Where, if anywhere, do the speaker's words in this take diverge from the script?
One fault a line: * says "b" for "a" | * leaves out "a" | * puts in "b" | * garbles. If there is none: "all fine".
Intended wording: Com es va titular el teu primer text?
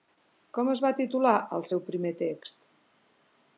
* says "seu" for "teu"